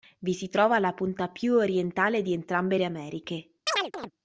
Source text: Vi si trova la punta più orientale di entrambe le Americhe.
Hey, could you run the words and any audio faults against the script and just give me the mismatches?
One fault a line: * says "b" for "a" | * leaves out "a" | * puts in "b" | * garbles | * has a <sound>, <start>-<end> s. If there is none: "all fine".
* has a chirp, 3.7-4.1 s